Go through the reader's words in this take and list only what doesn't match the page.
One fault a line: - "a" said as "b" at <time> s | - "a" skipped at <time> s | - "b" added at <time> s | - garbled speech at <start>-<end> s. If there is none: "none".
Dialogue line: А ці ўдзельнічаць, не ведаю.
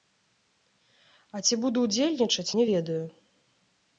- "буду" added at 1.7 s